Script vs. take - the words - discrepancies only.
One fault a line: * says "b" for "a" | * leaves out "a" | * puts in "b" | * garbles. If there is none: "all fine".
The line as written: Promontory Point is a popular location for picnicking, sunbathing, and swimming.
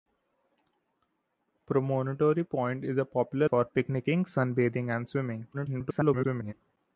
* leaves out "location"
* garbles